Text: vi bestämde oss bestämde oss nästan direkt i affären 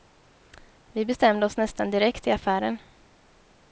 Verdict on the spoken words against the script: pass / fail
fail